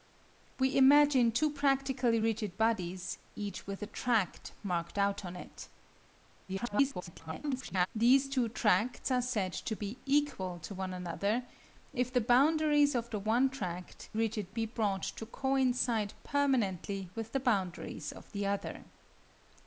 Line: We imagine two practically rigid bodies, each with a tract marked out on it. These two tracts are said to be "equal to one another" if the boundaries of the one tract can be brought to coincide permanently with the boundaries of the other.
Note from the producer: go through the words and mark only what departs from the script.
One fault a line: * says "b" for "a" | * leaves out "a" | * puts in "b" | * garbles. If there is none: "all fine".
* garbles
* says "rigid" for "can"